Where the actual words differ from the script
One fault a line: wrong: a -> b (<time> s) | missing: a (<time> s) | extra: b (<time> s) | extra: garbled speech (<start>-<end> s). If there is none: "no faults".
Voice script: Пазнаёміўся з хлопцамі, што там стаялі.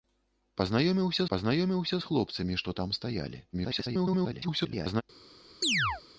extra: пазнаёміўся (1.3 s)
extra: garbled speech (3.5-5.0 s)